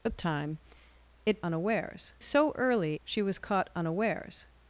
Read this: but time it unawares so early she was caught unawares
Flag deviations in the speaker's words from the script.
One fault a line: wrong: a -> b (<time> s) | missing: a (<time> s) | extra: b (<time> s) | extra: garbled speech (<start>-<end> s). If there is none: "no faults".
no faults